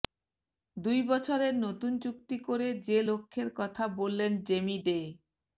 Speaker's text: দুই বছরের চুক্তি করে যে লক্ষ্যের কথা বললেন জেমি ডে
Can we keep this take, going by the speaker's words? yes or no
no